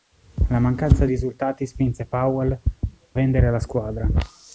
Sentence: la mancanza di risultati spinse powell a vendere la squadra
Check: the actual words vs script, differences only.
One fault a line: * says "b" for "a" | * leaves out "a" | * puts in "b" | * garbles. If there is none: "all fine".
* leaves out "di"
* leaves out "a"